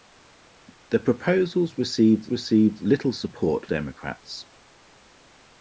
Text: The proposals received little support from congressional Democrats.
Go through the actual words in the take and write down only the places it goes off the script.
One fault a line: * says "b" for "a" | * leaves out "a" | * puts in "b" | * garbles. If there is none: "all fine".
* puts in "received"
* leaves out "from congressional"